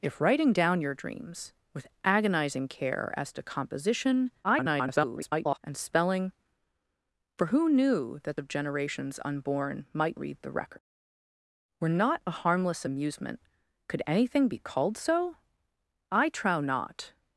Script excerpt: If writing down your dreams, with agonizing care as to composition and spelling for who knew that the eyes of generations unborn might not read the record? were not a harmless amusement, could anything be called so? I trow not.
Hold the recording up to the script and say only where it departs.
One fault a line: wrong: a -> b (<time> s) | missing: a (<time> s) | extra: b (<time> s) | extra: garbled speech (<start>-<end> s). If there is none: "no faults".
extra: garbled speech (4.4-5.6 s)
missing: the eyes (8.4 s)
missing: not (10.2 s)